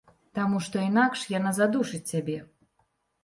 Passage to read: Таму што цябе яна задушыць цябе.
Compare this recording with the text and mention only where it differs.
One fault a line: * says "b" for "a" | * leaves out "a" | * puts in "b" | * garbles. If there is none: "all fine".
* says "інакш" for "цябе"